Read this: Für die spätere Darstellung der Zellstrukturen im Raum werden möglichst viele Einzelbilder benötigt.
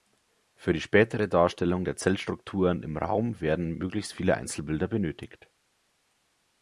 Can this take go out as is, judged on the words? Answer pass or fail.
pass